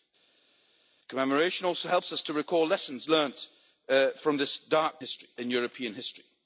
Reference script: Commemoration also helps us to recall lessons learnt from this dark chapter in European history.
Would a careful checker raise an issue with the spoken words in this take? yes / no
yes